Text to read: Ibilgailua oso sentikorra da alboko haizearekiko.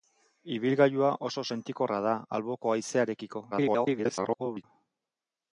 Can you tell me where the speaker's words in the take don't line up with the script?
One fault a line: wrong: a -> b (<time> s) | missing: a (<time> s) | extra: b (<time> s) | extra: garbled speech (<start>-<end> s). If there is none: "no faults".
extra: garbled speech (3.5-4.6 s)